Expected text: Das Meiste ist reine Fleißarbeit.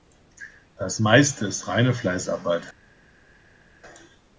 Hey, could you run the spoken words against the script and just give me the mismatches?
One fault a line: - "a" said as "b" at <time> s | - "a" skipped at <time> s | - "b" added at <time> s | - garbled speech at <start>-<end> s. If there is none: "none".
none